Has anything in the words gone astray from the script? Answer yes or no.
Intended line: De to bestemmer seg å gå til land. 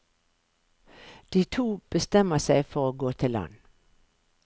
yes